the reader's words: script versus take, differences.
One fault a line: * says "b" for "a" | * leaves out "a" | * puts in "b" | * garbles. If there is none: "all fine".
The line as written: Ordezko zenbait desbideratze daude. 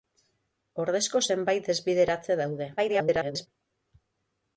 * garbles